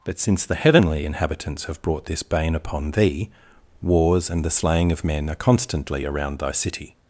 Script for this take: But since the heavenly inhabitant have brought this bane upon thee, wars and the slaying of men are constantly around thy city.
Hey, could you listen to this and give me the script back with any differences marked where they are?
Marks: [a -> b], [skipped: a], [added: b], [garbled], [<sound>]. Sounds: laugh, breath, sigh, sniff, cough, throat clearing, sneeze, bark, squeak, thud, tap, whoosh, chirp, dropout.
But since the heavenly [inhabitant -> inhabitants] have brought this bane upon thee, wars and the slaying of men are constantly around thy city.